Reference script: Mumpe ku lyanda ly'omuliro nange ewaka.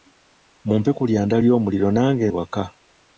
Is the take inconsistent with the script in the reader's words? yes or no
no